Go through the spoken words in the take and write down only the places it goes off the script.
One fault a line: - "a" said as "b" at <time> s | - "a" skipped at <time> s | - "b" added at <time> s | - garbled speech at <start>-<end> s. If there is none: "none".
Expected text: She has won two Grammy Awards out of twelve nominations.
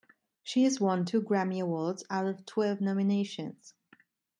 none